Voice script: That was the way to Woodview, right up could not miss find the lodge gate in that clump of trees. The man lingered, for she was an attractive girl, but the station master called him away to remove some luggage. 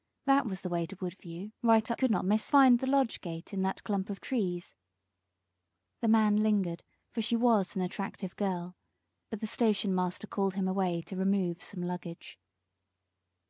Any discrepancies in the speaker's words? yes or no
no